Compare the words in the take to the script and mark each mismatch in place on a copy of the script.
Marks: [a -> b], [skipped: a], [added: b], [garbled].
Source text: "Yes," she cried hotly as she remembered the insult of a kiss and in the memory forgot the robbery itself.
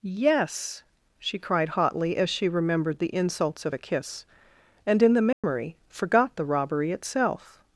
"Yes," she cried hotly as she remembered the [insult -> insults] of a kiss and in the memory forgot the robbery itself.